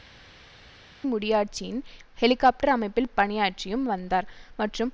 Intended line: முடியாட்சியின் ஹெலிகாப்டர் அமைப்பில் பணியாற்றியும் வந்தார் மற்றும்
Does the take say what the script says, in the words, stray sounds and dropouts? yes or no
yes